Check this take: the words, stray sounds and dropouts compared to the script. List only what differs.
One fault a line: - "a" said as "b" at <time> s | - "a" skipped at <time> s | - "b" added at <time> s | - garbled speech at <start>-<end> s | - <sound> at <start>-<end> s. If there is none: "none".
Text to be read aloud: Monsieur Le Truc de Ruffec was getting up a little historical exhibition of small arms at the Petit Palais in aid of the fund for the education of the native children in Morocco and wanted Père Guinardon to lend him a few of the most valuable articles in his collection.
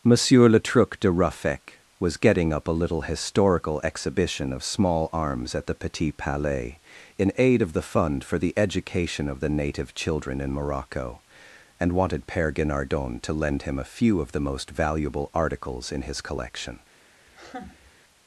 - laugh at 17.3-17.9 s